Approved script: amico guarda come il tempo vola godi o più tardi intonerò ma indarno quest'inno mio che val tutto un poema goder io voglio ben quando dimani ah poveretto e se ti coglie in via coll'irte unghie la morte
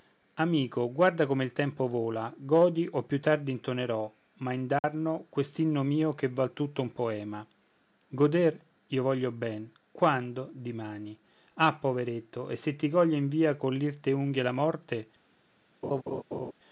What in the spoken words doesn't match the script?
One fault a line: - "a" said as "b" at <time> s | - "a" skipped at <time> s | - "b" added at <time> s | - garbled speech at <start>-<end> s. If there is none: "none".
none